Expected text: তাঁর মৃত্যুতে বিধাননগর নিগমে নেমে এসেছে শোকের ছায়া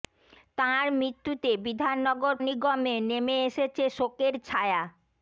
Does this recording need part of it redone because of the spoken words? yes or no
no